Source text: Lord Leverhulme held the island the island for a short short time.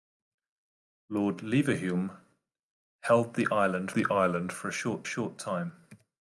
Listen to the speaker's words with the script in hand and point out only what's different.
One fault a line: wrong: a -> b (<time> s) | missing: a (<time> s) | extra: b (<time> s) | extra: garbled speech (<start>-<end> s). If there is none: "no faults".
no faults